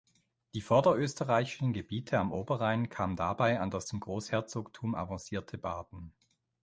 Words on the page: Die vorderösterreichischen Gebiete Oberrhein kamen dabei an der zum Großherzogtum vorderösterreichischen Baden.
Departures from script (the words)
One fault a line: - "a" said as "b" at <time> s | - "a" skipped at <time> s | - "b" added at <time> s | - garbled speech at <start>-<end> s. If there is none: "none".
- "am" added at 2.2 s
- "der" said as "das" at 3.7 s
- "vorderösterreichischen" said as "avancierte" at 4.9 s